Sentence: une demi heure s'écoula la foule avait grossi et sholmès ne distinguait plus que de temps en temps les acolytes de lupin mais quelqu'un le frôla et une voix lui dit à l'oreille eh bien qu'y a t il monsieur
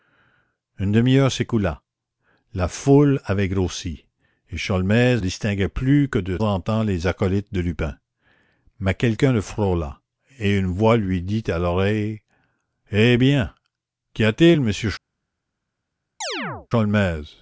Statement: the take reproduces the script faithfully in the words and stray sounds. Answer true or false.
false